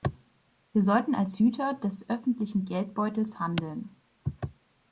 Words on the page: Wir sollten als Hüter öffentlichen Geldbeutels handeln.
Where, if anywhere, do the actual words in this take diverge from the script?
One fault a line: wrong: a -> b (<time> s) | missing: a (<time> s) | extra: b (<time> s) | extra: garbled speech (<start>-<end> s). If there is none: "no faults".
extra: des (1.7 s)